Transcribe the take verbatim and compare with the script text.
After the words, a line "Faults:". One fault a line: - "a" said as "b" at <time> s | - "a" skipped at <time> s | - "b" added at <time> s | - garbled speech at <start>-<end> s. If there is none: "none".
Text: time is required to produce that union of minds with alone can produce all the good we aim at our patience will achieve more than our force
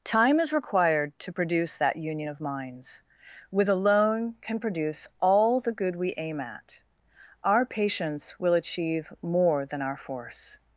time is required to produce that union of minds with alone can produce all the good we aim at our patience will achieve more than our force
Faults:
none